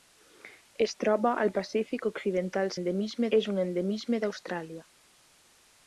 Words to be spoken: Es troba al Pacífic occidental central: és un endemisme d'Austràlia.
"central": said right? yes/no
no